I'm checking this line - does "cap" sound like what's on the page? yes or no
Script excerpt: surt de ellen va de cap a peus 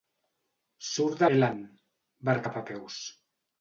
yes